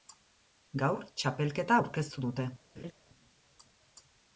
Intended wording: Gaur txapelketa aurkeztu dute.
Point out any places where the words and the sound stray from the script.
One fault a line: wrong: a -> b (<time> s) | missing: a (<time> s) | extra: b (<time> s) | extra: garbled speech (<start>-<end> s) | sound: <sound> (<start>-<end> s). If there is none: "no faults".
sound: laugh (2.8-2.9 s)